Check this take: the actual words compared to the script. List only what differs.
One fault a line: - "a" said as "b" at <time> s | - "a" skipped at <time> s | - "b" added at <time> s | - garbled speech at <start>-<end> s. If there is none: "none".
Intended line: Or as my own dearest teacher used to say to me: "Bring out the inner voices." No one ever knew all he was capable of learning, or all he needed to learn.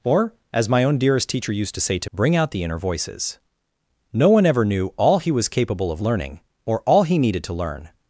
- "me" skipped at 2.1 s